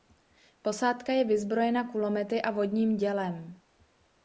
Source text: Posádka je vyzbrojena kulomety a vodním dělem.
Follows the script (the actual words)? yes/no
yes